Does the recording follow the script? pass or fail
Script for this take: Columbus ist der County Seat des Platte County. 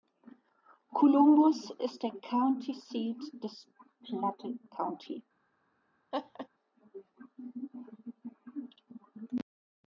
pass